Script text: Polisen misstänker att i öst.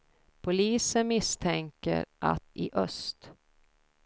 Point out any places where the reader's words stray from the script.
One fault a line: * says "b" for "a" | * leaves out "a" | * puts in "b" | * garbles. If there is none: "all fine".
all fine